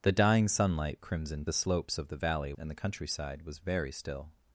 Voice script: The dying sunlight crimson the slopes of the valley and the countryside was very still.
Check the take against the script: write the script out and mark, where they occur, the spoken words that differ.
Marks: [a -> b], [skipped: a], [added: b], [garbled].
The dying sunlight crimson the slopes of the valley and the countryside was very still.